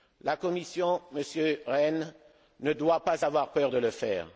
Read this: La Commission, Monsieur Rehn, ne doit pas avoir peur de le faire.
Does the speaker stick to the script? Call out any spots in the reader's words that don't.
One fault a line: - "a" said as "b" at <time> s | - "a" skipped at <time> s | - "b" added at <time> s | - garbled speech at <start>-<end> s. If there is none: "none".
none